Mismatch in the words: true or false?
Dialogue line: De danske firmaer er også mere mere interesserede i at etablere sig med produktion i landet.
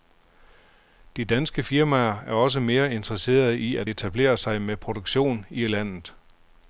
true